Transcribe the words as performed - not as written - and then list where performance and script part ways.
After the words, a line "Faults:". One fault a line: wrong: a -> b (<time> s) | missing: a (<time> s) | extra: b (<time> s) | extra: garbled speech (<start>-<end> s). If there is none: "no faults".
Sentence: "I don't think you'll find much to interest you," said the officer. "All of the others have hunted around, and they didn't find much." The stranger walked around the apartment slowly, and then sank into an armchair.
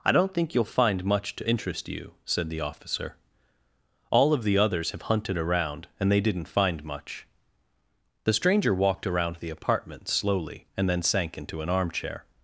"I don't think you'll find much to interest you," said the officer. "All of the others have hunted around, and they didn't find much." The stranger walked around the apartment slowly, and then sank into an armchair.
Faults:
no faults